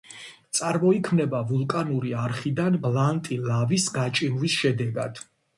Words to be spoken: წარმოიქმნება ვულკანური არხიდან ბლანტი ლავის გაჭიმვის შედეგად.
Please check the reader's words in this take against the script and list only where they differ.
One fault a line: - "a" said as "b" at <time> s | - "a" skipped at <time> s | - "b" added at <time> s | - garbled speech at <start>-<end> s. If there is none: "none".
none